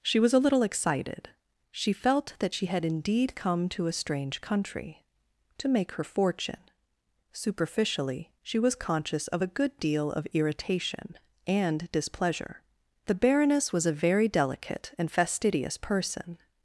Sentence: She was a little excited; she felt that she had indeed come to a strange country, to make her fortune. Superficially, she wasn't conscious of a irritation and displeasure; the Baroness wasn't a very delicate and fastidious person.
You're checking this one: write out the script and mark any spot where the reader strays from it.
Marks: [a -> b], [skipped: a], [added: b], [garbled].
She was a little excited; she felt that she had indeed come to a strange country, to make her fortune. Superficially, she [wasn't -> was] conscious of a [added: good deal of] irritation and displeasure; the Baroness [wasn't -> was] a very delicate and fastidious person.